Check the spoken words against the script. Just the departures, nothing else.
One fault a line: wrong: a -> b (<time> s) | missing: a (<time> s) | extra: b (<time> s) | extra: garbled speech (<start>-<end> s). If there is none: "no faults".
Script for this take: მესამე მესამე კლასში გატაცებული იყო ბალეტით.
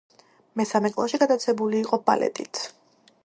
missing: მესამე (0.9 s)